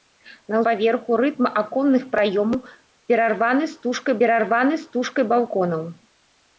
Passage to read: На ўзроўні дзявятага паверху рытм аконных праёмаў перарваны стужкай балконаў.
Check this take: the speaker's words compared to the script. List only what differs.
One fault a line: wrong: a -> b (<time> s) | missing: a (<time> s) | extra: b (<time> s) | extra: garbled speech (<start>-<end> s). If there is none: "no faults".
missing: ўзроўні дзявятага (0.6 s)
extra: перарваны стужкай (4.2 s)